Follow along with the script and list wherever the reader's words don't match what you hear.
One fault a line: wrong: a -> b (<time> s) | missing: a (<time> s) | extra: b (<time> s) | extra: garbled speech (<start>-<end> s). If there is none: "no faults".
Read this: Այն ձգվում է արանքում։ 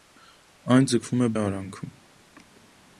no faults